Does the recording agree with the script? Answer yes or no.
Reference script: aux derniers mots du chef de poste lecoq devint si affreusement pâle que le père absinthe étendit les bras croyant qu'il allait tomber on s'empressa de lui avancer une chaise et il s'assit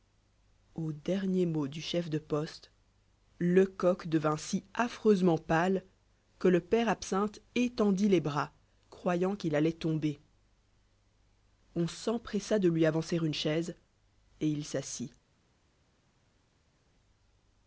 yes